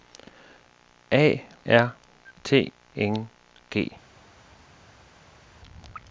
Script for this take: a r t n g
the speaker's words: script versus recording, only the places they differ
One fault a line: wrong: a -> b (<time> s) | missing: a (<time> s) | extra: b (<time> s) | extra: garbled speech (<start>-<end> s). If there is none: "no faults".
no faults